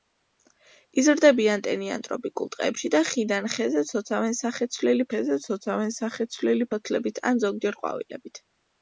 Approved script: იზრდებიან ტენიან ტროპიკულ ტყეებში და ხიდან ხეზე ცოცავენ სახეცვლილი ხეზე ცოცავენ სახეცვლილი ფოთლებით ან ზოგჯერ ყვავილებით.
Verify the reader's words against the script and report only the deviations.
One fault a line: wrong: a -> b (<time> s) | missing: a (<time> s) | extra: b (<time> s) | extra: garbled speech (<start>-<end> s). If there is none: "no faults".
no faults